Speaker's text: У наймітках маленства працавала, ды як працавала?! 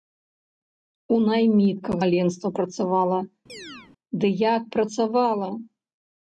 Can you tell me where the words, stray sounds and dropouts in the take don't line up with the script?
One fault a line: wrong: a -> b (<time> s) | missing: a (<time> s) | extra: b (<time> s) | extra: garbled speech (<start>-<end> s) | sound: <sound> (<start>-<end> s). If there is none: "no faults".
sound: chirp (3.5-3.9 s)